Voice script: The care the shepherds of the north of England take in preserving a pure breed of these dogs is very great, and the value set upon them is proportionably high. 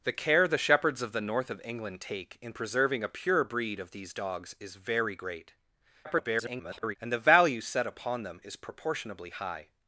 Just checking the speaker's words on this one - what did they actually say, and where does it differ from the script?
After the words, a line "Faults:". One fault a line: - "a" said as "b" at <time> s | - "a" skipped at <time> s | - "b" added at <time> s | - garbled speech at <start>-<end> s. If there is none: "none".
The care the shepherds of the north of England take in preserving a pure breed of these dogs is very great, [garbled] and the value set upon them is proportionably high.
Faults:
- garbled speech at 6.0-7.0 s